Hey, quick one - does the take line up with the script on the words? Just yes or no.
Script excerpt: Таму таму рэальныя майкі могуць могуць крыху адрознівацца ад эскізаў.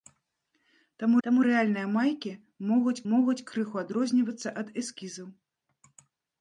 yes